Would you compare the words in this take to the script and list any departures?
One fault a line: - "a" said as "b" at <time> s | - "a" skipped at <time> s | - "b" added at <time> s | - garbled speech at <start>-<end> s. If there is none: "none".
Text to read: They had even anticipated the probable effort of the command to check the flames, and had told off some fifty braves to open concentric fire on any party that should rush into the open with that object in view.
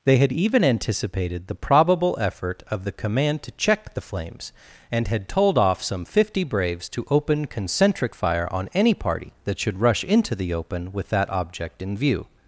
none